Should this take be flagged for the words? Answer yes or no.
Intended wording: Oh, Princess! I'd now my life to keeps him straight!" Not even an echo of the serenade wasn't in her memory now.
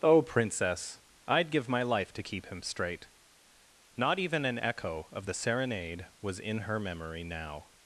yes